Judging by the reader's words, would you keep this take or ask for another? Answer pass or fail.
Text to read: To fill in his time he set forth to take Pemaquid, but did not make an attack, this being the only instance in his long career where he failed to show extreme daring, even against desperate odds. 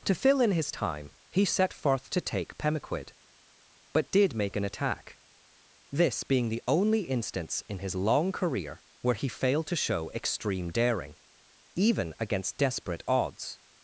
fail